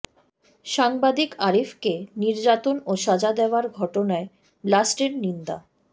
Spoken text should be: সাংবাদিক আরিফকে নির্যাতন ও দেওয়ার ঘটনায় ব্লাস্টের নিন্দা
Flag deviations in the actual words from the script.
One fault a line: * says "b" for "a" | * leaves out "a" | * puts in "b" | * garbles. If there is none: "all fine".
* puts in "সাজা"